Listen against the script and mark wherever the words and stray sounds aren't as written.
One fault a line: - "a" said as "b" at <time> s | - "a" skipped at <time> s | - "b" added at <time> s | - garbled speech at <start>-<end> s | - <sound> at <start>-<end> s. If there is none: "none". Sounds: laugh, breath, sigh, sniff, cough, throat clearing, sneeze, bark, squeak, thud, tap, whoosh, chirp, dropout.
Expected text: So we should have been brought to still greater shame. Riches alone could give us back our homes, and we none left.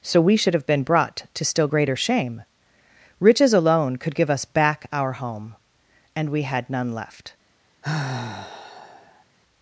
- "homes" said as "home" at 5.1 s
- "had" added at 6.4 s
- sigh at 7.8-9.2 s